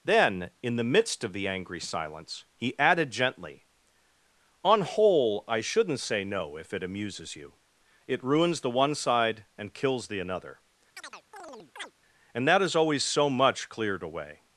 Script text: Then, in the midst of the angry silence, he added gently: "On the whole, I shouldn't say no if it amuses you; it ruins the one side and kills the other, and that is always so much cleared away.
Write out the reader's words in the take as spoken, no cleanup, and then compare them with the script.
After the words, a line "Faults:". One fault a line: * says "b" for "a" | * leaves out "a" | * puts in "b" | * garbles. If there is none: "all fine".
Then, in the midst of the angry silence, he added gently: "On whole, I shouldn't say no if it amuses you; it ruins the one side and kills the another, and that is always so much cleared away.
Faults:
* leaves out "the"
* says "another" for "other"